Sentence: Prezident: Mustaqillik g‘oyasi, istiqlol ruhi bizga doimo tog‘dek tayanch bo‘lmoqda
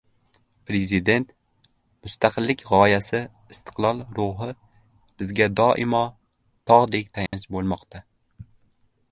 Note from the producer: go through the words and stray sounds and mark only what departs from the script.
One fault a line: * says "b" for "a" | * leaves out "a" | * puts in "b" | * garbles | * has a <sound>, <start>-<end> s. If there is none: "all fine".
* has a dropout, 7.3-7.3 s